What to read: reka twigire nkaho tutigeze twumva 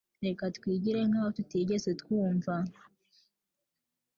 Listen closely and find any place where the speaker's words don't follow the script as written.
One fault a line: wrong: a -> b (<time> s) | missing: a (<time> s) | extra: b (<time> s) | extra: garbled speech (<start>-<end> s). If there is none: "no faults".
no faults